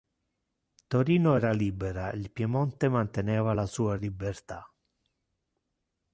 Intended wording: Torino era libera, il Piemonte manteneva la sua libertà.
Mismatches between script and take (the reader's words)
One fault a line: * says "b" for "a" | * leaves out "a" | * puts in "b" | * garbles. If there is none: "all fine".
all fine